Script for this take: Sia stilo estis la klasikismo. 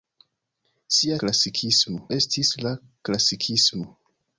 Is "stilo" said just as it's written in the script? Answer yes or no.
no